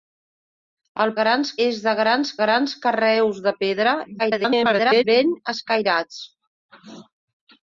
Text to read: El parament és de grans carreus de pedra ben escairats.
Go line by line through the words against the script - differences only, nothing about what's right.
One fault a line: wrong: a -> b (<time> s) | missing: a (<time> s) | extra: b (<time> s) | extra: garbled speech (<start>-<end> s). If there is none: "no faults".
wrong: parament -> grans (1.2 s)
extra: grans (2.4 s)
extra: garbled speech (4.2-5.0 s)